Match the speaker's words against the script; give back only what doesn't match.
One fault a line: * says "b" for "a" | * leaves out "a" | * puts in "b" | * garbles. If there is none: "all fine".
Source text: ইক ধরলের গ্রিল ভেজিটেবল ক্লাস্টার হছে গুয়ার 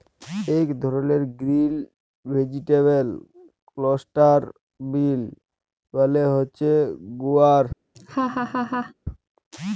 * puts in "বিল মালে"